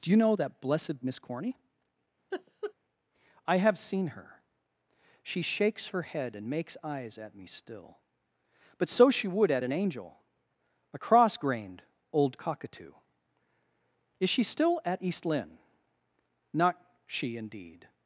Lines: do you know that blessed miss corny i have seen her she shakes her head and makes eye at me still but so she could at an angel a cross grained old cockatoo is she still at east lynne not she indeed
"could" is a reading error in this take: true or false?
true